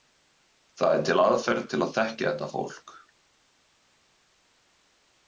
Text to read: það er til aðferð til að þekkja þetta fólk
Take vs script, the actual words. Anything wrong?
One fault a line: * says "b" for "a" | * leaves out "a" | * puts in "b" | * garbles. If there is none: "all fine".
all fine